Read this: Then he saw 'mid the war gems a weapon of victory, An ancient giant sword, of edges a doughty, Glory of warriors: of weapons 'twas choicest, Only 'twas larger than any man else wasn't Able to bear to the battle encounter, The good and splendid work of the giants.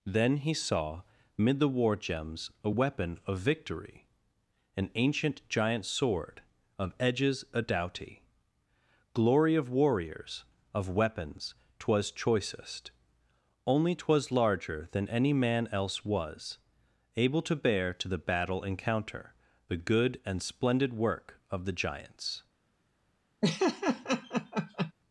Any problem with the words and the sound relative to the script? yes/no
yes